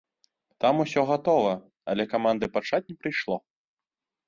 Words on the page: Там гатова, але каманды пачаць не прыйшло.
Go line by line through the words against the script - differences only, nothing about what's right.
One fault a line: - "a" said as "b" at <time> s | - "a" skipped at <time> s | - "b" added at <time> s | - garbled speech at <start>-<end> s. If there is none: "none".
- "усё" added at 0.8 s